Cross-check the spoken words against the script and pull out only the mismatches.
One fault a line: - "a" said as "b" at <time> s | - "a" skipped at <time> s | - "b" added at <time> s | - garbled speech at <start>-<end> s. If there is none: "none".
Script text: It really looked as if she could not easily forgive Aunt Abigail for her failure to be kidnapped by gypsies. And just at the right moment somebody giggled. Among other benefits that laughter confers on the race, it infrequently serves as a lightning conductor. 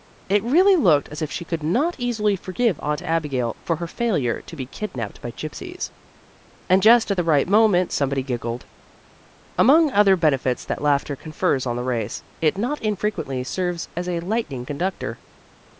- "not" added at 12.6 s